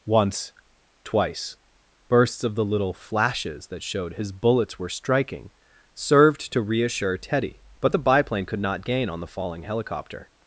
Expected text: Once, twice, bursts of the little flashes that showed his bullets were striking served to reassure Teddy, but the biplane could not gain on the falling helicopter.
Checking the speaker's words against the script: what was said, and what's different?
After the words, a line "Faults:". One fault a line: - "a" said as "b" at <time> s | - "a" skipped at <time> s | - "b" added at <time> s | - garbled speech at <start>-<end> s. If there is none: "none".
Once, twice, bursts of the little flashes that showed his bullets were striking served to reassure Teddy, but the biplane could not gain on the falling helicopter.
Faults:
none